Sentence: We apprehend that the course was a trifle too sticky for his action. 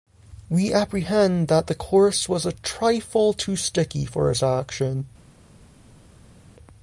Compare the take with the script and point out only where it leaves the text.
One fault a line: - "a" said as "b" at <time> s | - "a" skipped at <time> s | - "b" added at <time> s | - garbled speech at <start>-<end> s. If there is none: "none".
none